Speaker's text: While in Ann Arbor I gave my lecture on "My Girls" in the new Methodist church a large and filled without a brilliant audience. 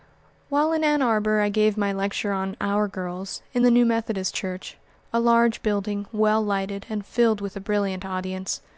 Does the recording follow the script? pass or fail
fail